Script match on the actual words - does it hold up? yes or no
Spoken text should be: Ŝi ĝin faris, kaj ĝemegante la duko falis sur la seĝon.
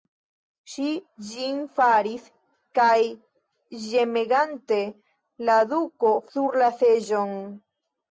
no